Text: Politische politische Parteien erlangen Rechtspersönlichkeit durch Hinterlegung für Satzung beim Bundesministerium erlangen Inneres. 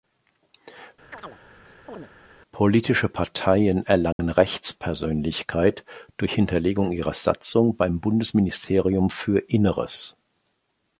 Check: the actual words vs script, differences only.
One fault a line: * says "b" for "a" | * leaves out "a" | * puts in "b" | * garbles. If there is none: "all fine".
* leaves out "politische"
* says "ihrer" for "für"
* says "für" for "erlangen"